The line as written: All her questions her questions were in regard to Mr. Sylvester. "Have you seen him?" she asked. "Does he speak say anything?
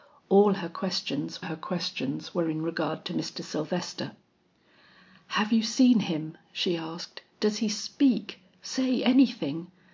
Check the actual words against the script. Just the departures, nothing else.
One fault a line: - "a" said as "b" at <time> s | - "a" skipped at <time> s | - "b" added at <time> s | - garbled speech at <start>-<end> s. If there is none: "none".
none